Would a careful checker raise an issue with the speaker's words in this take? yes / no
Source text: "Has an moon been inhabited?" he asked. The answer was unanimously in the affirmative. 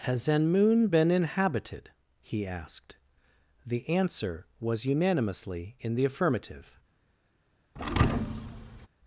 no